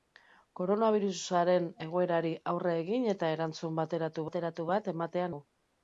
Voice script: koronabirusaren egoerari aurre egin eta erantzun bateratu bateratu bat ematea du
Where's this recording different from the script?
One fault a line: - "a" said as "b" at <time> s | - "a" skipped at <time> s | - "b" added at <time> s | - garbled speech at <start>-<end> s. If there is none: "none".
none